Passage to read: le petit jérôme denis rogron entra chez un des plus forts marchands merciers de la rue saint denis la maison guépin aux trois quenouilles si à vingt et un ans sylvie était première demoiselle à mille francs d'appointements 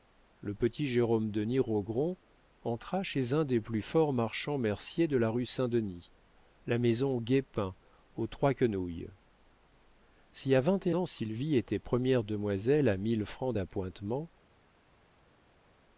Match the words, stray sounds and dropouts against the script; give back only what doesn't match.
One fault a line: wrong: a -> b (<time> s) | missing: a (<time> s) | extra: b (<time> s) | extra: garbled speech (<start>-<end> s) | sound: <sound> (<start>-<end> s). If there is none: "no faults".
missing: un (10.9 s)